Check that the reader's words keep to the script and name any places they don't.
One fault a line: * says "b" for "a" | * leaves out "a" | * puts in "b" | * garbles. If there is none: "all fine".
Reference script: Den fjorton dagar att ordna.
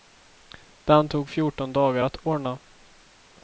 * puts in "tog"